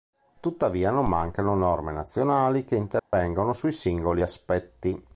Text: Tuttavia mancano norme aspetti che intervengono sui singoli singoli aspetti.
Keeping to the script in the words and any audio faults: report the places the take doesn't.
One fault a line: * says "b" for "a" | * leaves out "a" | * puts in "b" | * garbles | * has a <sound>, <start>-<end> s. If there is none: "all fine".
* puts in "non"
* says "nazionali" for "aspetti"
* has a dropout, 3.0-3.1 s
* leaves out "singoli"